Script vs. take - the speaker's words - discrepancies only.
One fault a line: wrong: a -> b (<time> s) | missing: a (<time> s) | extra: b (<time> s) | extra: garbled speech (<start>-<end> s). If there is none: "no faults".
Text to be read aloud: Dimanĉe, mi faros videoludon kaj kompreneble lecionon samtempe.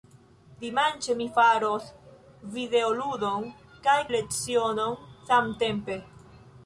missing: kompreneble (4.0 s)